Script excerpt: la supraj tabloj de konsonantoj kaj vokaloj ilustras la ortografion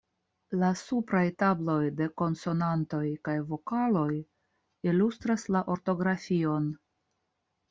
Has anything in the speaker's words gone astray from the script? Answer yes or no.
no